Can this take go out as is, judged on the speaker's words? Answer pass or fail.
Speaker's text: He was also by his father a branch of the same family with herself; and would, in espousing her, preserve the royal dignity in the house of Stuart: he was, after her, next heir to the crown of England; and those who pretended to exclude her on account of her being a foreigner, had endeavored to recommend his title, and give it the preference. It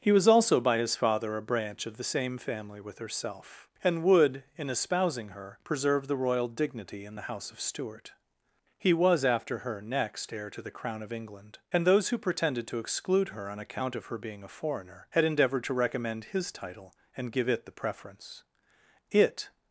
pass